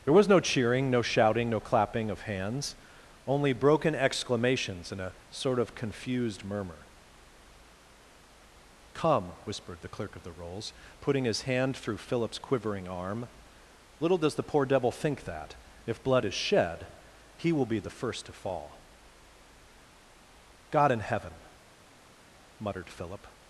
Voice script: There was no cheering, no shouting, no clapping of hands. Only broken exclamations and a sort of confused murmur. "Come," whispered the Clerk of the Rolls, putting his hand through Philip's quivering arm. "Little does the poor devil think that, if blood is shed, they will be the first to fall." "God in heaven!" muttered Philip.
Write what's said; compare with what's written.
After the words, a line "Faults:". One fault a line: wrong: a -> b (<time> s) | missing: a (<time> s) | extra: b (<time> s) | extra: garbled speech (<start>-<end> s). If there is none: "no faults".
There was no cheering, no shouting, no clapping of hands. Only broken exclamations and a sort of confused murmur. "Come," whispered the Clerk of the Rolls, putting his hand through Philip's quivering arm. "Little does the poor devil think that, if blood is shed, he will be the first to fall." "God in heaven!" muttered Philip.
Faults:
wrong: they -> he (17.4 s)